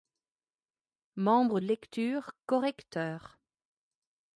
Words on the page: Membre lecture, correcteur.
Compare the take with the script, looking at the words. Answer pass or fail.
pass